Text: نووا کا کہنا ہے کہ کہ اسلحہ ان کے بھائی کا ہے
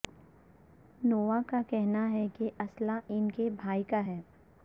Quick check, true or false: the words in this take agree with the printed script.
false